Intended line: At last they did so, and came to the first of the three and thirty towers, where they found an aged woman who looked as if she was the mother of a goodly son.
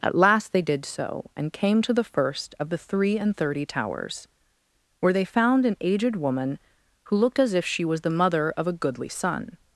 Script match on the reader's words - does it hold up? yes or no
yes